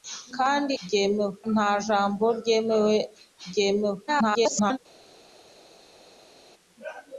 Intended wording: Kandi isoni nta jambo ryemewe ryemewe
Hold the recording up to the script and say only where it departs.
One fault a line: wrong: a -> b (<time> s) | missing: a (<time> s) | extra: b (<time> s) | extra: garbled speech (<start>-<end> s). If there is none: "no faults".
wrong: isoni -> ryemewe (0.8 s)
extra: garbled speech (4.1-4.8 s)